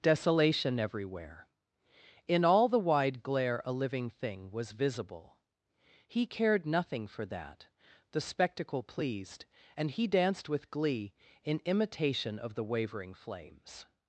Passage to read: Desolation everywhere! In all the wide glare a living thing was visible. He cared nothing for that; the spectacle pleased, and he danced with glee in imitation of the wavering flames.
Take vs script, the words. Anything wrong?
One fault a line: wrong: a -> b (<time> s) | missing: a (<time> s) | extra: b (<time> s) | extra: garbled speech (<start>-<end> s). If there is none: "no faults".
no faults